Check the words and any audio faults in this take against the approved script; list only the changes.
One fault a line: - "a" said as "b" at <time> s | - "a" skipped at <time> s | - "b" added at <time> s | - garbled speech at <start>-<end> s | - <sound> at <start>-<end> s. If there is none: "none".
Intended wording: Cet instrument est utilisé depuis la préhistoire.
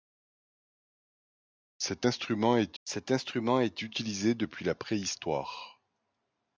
- "cet instrument est" added at 2.8 s